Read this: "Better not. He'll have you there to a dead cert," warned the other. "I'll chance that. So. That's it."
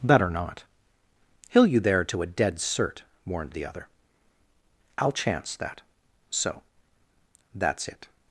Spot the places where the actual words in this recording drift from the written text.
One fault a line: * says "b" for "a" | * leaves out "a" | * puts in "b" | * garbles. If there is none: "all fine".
* leaves out "have"